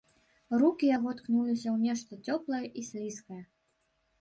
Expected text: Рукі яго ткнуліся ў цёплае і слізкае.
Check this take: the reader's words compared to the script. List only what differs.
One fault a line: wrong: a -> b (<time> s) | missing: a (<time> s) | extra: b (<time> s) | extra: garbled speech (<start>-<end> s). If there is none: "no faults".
extra: нешта (1.9 s)